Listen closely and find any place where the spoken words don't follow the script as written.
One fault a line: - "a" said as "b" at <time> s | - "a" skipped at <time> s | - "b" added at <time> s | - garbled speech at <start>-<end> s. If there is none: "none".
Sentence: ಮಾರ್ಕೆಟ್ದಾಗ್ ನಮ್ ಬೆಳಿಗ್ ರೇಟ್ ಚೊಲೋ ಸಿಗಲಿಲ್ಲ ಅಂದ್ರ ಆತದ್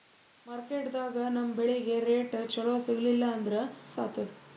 none